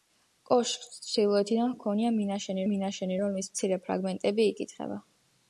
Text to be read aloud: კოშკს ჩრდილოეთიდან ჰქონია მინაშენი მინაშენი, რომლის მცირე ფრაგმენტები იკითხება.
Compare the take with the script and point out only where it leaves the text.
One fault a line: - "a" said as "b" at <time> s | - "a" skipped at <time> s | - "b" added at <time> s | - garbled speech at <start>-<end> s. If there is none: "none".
none